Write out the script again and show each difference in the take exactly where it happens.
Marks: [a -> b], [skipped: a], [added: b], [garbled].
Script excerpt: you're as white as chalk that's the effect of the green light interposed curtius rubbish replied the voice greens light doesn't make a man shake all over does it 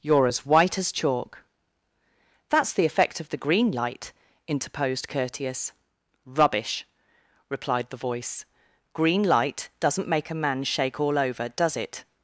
you're as white as chalk that's the effect of the green light interposed curtius rubbish replied the voice [greens -> green] light doesn't make a man shake all over does it